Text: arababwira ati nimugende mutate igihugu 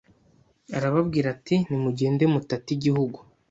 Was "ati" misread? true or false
false